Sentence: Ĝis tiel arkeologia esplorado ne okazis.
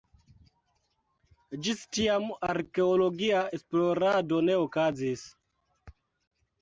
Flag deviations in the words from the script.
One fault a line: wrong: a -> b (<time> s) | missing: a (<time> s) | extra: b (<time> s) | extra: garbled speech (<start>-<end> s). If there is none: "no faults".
wrong: tiel -> tiam (2.0 s)